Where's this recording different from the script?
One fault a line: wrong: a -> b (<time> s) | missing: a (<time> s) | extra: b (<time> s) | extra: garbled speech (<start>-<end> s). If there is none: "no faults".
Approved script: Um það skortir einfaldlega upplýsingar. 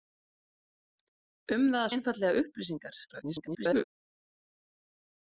missing: skortir (1.9 s)
extra: garbled speech (3.1-3.8 s)